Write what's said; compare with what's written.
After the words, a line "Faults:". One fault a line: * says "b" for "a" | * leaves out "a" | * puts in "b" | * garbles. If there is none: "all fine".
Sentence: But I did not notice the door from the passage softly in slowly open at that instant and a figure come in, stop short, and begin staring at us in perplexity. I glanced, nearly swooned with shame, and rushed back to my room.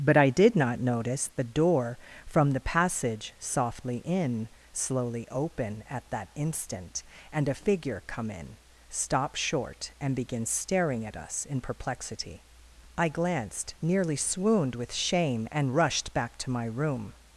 But I did not notice the door from the passage softly in slowly open at that instant and a figure come in, stop short, and begin staring at us in perplexity. I glanced, nearly swooned with shame, and rushed back to my room.
Faults:
all fine